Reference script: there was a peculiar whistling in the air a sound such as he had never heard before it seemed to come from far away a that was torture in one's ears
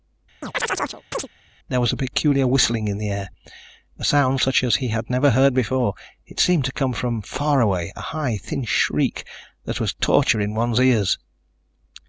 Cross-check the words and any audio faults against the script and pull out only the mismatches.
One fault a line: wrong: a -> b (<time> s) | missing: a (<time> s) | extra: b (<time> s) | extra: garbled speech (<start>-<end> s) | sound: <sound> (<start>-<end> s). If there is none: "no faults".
sound: chirp (0.4-1.3 s)
extra: high thin shriek (8.0 s)